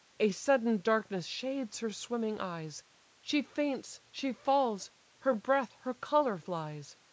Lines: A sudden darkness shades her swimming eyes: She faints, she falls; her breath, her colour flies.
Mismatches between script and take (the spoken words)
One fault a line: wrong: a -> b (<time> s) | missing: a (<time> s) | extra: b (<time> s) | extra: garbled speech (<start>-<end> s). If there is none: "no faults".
no faults